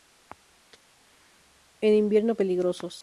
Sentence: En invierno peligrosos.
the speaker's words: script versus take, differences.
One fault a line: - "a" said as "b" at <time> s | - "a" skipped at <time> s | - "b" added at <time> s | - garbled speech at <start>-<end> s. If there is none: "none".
none